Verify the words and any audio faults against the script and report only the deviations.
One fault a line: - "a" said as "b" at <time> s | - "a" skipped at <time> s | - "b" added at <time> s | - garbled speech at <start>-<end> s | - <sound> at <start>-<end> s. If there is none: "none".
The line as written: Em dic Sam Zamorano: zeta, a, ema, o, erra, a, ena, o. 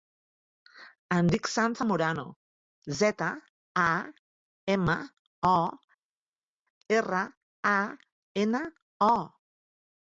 none